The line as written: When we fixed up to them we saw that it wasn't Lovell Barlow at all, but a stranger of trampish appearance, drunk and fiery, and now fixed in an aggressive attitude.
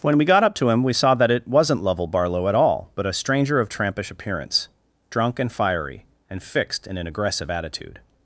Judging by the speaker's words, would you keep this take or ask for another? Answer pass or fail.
fail